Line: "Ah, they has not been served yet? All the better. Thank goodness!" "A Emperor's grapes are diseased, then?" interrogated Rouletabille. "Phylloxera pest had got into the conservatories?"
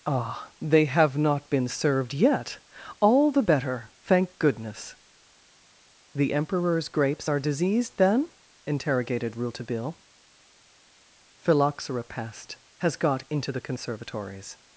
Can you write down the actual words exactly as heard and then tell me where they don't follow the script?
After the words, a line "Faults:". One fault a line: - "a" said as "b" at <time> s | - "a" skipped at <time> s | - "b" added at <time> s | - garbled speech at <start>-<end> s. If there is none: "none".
"Ah, they have not been served yet? All the better. Thank goodness!" "The Emperor's grapes are diseased, then?" interrogated Rouletabille. "Phylloxera pest has got into the conservatories?"
Faults:
- "has" said as "have" at 0.8 s
- "A" said as "The" at 6.2 s
- "had" said as "has" at 12.8 s